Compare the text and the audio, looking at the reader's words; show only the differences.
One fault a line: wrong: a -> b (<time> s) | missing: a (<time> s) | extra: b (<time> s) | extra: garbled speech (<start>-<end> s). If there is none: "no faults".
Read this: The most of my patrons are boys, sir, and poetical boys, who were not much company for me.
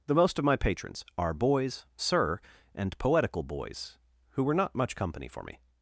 no faults